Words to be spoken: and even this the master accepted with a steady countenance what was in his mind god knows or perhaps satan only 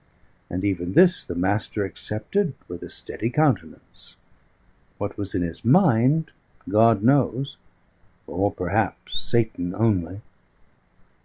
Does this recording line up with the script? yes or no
yes